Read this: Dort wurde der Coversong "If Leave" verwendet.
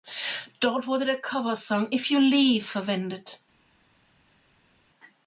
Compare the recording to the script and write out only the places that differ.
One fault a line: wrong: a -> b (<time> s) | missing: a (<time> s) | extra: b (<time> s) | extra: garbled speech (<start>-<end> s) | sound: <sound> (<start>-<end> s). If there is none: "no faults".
extra: You (2.1 s)